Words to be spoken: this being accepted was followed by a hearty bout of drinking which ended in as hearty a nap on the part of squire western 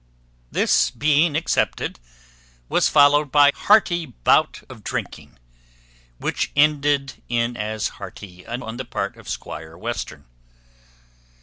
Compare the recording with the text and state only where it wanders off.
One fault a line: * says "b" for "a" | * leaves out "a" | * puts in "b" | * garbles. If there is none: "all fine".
* leaves out "a"
* leaves out "nap"